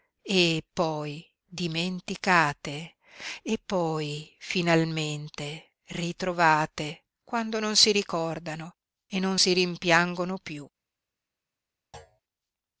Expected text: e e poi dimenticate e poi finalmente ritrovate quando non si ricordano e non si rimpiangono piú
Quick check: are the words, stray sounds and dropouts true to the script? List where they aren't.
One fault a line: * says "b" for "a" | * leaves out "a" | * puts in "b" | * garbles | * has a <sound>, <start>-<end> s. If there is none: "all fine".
* leaves out "e"
* has a thud, 11.9-12.2 s